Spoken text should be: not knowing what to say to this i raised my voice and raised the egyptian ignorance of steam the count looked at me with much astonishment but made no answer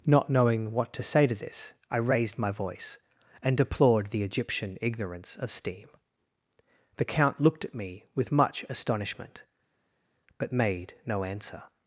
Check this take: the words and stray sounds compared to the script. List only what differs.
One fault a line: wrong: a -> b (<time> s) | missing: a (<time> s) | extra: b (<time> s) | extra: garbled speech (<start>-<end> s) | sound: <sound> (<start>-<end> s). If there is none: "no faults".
wrong: raised -> deplored (3.5 s)